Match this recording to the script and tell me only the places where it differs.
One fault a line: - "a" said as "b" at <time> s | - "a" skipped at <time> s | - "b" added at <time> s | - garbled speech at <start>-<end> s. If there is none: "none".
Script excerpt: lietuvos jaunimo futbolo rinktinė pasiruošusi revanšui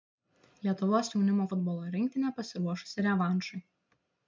none